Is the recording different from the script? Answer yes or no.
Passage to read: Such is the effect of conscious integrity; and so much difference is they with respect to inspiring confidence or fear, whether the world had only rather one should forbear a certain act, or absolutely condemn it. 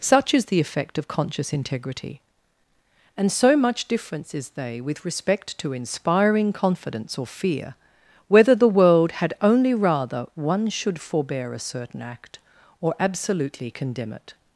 no